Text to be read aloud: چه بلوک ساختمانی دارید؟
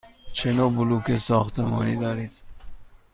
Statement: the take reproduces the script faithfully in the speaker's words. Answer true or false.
false